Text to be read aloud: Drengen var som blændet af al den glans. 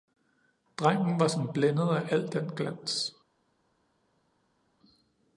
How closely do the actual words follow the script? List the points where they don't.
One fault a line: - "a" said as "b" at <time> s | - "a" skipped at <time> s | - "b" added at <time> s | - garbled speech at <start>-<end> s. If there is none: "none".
none